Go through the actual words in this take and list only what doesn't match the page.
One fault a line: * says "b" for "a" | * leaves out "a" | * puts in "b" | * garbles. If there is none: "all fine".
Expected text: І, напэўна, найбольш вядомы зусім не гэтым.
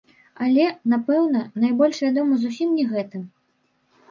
* says "Але" for "І"